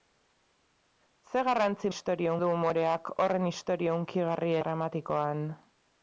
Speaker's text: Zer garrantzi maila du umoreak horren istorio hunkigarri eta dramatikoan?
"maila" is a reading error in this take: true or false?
true